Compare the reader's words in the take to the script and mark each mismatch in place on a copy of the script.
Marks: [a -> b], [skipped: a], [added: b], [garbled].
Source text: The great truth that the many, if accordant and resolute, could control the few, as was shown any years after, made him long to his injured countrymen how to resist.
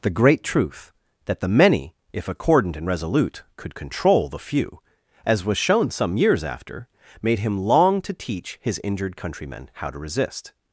The great truth that the many, if accordant and resolute, could control the few, as was shown [any -> some] years after, made him long to [added: teach] his injured countrymen how to resist.